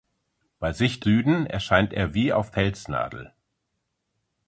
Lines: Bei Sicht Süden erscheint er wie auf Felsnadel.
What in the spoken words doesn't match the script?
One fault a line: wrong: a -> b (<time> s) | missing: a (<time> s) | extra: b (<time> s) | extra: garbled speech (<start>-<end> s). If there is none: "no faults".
no faults